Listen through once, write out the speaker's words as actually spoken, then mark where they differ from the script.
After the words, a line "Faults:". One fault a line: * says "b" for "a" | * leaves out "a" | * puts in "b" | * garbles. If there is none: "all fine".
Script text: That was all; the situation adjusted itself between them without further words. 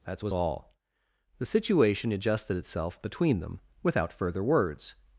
That was all; the situation adjusted itself between them without further words.
Faults:
all fine